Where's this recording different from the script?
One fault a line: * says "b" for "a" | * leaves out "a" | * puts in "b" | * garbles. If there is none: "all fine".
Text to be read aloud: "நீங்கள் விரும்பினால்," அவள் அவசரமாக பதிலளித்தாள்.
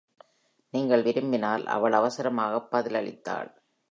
all fine